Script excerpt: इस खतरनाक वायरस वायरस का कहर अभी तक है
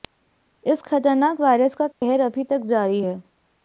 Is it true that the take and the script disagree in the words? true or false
true